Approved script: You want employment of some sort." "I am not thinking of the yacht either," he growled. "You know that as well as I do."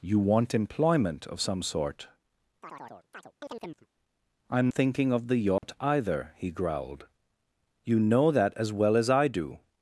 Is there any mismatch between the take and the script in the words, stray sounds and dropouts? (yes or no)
yes